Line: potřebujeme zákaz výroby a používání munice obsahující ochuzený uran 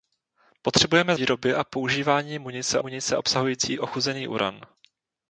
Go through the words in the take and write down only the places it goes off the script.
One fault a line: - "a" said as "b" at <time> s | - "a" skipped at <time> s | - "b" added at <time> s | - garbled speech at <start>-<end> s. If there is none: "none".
- "zákaz" skipped at 1.1 s
- "munice" added at 2.8 s